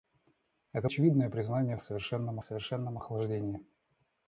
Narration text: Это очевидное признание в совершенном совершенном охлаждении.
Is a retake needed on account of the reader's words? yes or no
no